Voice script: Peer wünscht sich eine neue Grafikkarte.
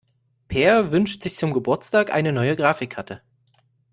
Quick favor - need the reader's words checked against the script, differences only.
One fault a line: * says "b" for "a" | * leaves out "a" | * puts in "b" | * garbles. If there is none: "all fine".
* puts in "zum Geburtstag"